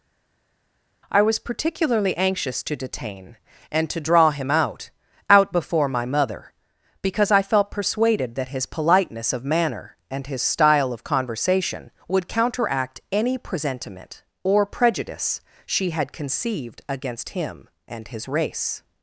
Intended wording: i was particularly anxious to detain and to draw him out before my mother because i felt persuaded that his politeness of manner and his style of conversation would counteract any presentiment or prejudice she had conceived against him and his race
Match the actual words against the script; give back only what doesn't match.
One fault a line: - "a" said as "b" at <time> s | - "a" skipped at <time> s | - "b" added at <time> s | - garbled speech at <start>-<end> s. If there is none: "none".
- "out" added at 5.3 s